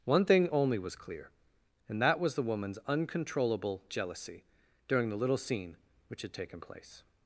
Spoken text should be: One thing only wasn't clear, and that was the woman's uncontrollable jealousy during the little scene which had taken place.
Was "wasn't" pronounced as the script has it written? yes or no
no